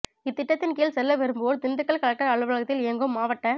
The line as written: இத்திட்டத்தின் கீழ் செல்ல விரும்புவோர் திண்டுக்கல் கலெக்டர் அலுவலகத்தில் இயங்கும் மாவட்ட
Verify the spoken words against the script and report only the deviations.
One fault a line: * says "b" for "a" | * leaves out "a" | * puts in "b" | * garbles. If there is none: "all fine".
all fine